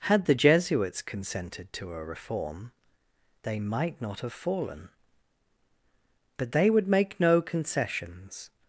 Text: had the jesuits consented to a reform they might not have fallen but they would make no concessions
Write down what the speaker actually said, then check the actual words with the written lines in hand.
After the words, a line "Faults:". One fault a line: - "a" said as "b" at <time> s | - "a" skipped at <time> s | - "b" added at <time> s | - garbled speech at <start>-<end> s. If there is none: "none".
had the jesuits consented to a reform they might not have fallen but they would make no concessions
Faults:
none